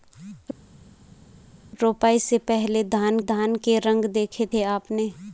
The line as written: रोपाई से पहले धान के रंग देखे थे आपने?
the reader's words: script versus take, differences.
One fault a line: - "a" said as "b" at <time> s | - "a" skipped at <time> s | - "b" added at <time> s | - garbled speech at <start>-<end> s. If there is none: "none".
- "धान" added at 3.2 s